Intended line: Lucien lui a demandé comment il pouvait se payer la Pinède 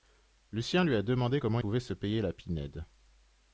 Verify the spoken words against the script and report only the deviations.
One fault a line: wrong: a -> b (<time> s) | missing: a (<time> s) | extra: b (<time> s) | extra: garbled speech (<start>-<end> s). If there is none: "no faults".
missing: il (1.6 s)